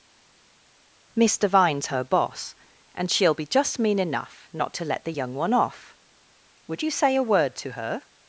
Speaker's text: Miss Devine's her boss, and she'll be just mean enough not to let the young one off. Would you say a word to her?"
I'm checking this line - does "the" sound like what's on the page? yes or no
yes